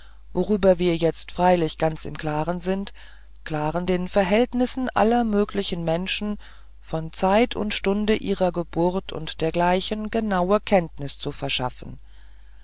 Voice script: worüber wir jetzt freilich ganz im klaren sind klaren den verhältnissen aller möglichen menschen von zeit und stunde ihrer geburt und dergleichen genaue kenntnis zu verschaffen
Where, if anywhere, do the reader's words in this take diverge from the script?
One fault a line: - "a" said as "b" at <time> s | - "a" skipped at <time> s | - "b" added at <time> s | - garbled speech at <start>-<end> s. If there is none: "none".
none